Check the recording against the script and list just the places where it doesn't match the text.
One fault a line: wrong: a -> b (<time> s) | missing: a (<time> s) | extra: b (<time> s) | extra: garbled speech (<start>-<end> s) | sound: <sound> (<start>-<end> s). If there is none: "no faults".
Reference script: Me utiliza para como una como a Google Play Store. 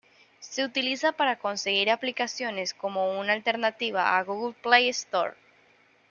wrong: Me -> Se (0.4 s)
extra: conseguir aplicaciones (1.4 s)
wrong: como -> alternativa (3.3 s)